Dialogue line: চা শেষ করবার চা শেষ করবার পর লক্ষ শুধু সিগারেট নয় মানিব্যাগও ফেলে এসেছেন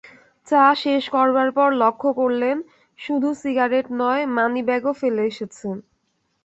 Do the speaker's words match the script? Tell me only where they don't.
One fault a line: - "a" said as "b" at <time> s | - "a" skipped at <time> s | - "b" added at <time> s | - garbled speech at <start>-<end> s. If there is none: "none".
- "চা শেষ করবার" skipped at 1.5 s
- "করলেন" added at 2.2 s